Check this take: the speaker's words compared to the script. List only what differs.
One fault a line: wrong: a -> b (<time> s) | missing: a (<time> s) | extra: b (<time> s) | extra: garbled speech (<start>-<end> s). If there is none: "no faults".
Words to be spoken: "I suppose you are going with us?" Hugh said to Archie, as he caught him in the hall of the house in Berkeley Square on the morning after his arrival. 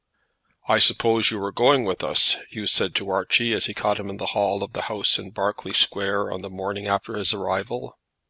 no faults